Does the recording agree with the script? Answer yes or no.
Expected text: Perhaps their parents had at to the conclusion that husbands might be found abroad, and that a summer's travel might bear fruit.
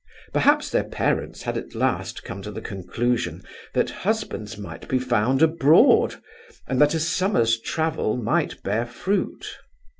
no